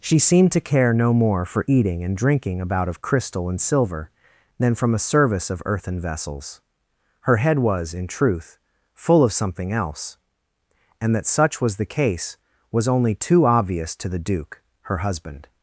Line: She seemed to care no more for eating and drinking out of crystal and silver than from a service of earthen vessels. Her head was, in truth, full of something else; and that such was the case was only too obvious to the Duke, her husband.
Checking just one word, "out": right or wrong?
wrong